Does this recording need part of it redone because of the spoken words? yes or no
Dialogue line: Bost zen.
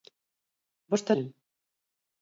no